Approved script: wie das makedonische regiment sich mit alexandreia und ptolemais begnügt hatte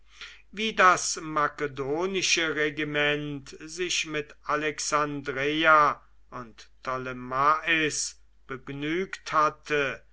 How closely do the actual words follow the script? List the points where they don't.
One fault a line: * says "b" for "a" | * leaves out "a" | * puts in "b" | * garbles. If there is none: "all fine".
all fine